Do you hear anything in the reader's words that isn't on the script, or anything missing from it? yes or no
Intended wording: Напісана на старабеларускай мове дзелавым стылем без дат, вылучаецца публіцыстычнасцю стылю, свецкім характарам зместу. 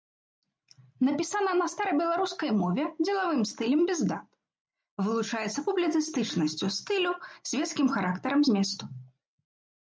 no